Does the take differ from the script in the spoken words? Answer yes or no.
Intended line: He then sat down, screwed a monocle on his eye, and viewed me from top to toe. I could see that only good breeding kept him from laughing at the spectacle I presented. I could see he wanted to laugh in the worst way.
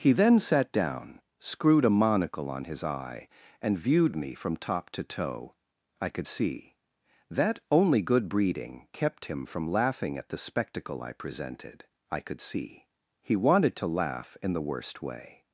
no